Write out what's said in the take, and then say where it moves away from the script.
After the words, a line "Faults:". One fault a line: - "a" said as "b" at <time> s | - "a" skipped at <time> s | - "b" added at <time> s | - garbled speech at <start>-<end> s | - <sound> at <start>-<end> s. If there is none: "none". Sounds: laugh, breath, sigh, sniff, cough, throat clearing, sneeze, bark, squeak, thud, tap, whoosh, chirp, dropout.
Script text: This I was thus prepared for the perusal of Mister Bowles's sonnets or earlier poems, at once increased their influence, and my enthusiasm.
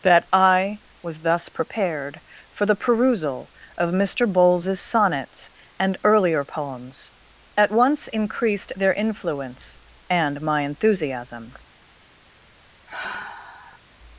That I was thus prepared for the perusal of Mister Bowles's sonnets and earlier poems, at once increased their influence, and my enthusiasm.
Faults:
- "This" said as "That" at 0.0 s
- "or" said as "and" at 5.8 s
- sigh at 12.9-13.8 s